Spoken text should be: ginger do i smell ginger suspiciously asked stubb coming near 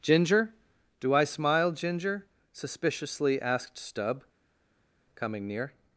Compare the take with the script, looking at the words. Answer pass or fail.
fail